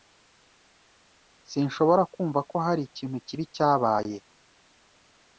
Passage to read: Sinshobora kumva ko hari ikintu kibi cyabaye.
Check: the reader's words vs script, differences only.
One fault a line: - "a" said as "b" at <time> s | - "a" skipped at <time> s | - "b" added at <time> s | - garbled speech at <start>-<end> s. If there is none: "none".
none